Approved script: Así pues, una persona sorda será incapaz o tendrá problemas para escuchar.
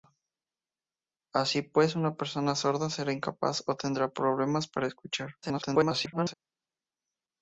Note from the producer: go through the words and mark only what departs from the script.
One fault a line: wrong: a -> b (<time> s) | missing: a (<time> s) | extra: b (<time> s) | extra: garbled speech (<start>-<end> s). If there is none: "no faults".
extra: garbled speech (5.4-6.3 s)